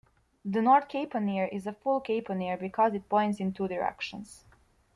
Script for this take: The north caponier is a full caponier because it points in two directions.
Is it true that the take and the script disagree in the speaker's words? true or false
false